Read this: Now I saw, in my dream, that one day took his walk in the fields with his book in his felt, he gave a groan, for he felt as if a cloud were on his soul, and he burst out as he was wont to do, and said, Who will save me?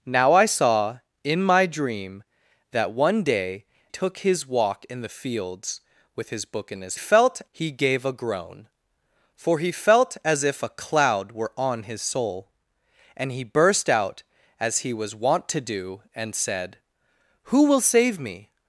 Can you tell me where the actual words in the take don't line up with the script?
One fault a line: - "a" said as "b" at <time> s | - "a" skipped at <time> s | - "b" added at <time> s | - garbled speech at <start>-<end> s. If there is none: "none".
none